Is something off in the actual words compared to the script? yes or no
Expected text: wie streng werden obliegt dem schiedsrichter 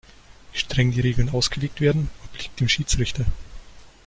yes